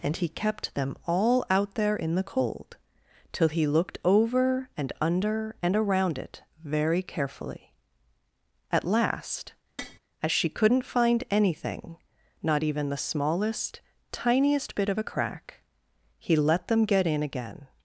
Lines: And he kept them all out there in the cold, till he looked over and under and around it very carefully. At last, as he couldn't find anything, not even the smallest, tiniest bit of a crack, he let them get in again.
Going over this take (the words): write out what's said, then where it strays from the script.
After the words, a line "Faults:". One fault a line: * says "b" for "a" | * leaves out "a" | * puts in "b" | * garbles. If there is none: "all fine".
And he kept them all out there in the cold, till he looked over and under and around it very carefully. At last, as she couldn't find anything, not even the smallest, tiniest bit of a crack, he let them get in again.
Faults:
* says "she" for "he"